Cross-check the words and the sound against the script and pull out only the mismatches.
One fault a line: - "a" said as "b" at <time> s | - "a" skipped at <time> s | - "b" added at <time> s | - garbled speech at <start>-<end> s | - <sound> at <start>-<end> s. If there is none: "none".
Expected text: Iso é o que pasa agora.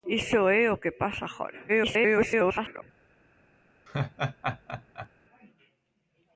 - garbled speech at 1.7-2.8 s
- laugh at 3.9-5.1 s